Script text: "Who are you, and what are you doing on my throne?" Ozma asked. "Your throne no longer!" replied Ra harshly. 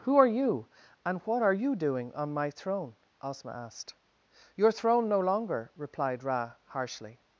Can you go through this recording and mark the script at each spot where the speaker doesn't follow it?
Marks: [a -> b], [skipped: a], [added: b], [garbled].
"Who are you, and what are you doing on my throne?" Ozma asked. "Your throne no longer!" replied Ra harshly.